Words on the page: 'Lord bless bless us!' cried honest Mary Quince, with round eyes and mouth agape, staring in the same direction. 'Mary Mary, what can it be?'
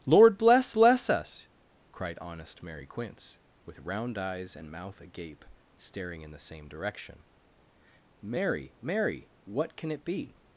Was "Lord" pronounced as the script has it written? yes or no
yes